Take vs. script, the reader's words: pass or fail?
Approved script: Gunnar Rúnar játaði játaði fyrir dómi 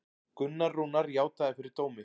fail